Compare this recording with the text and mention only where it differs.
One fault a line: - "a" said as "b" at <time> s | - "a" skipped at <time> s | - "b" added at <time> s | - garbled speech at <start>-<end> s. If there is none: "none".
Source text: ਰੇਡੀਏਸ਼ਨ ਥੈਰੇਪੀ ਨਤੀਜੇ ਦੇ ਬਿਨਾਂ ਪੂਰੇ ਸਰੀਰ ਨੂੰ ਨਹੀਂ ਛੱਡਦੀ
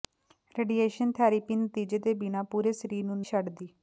- "ਨਹੀਂ" skipped at 3.2 s